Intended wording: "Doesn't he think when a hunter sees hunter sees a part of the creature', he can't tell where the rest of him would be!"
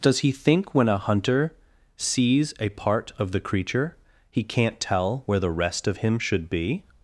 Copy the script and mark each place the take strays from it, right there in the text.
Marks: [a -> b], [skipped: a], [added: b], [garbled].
["Doesn't -> Does] he think when a hunter sees [skipped: hunter sees] a part of the creature', he can't tell where the rest of him [would -> should] be!"